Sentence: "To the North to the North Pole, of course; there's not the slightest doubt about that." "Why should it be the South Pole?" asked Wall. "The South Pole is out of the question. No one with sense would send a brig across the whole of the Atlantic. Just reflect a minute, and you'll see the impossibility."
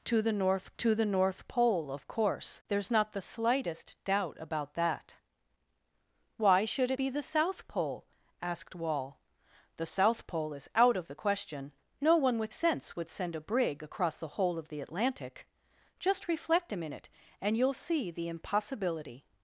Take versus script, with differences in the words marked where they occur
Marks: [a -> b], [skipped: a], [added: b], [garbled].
"To the North to the North Pole, of course; there's not the slightest doubt about that." "Why should it be the South Pole?" asked Wall. "The South Pole is out of the question. No one with sense would send a brig across the whole of the Atlantic. Just reflect a minute, and you'll see the impossibility."